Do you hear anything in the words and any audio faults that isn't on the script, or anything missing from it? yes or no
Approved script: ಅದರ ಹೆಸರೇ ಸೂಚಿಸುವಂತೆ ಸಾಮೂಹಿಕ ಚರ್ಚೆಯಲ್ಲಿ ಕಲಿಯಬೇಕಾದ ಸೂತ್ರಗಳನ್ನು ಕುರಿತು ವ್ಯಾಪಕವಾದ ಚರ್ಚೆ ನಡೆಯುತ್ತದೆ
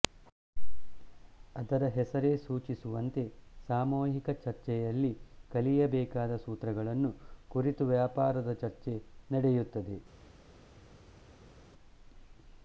no